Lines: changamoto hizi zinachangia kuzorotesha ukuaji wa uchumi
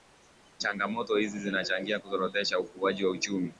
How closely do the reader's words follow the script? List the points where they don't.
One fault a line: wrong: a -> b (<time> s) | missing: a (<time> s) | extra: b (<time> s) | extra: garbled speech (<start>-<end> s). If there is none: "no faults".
no faults